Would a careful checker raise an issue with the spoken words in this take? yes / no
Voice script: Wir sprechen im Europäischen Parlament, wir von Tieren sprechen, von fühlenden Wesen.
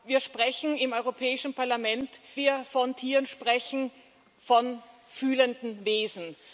no